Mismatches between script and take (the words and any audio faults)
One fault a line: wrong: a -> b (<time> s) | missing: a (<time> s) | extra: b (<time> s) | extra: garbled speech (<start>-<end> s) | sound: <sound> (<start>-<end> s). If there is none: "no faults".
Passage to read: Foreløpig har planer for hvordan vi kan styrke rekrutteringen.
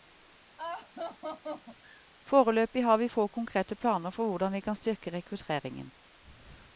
sound: laugh (0.6-2.1 s)
extra: vi få konkrete (3.0 s)